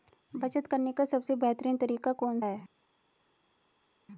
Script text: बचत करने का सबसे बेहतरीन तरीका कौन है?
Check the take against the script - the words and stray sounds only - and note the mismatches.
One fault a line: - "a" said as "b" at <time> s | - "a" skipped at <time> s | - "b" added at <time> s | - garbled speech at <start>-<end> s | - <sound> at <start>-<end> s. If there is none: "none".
none